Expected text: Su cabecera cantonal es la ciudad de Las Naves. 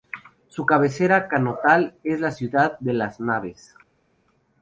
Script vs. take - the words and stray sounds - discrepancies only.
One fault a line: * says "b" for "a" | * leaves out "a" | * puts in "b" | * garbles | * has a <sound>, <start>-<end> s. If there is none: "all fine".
all fine